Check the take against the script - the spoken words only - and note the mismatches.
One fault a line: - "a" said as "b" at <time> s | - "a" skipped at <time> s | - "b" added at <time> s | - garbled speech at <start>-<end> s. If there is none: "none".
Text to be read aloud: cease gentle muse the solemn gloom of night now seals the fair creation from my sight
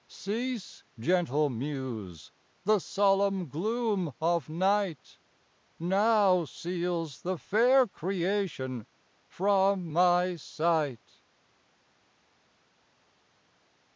none